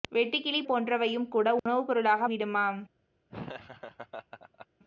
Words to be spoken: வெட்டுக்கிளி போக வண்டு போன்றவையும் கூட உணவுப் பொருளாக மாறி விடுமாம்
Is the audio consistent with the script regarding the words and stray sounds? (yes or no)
no